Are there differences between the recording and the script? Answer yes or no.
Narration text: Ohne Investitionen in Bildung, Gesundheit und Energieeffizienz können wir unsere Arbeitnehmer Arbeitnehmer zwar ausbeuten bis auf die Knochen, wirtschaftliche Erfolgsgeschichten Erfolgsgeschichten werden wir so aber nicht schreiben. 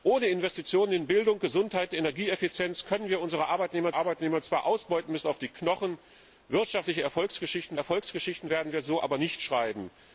no